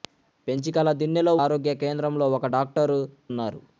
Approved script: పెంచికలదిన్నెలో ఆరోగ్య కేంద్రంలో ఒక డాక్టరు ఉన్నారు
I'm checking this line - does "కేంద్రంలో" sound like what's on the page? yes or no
yes